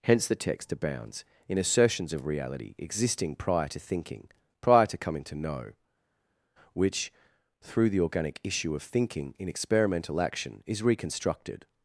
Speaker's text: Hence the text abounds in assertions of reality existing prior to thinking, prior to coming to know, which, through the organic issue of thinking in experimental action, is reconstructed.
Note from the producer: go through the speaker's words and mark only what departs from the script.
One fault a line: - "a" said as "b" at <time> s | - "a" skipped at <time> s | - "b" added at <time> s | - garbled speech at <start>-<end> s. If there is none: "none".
none